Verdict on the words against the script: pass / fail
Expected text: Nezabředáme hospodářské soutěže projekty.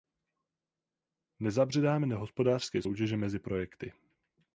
fail